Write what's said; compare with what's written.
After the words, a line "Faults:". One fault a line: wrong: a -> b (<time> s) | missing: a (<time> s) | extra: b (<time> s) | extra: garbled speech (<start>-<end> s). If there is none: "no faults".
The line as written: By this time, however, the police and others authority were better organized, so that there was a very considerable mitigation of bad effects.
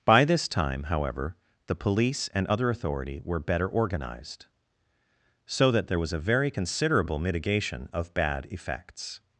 By this time, however, the police and other authority were better organized, so that there was a very considerable mitigation of bad effects.
Faults:
wrong: others -> other (2.4 s)